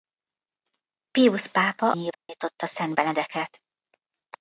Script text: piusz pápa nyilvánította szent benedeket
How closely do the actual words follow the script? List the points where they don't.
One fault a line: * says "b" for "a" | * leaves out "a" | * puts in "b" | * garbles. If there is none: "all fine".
all fine